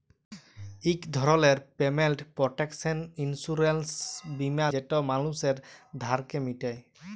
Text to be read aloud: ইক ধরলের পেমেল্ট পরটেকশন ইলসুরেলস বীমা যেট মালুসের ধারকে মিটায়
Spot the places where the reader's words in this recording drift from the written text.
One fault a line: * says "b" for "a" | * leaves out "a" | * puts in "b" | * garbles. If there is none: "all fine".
all fine